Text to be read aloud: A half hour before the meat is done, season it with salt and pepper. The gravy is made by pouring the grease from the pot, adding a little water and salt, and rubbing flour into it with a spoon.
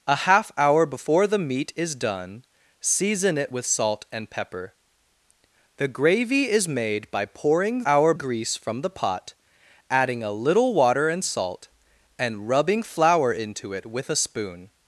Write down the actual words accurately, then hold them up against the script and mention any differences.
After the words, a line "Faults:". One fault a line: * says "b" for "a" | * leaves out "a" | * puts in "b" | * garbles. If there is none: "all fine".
A half hour before the meat is done, season it with salt and pepper. The gravy is made by pouring hour grease from the pot, adding a little water and salt, and rubbing flour into it with a spoon.
Faults:
* says "hour" for "the"